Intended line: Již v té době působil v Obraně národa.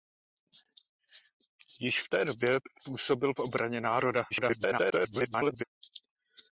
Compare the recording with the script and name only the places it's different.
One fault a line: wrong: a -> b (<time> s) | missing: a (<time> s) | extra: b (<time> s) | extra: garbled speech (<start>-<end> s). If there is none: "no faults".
extra: garbled speech (4.3-5.6 s)